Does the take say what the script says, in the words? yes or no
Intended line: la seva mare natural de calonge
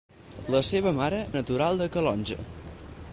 yes